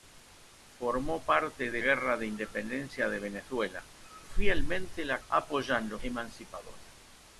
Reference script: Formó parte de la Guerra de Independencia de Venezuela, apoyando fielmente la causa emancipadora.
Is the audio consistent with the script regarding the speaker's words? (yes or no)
no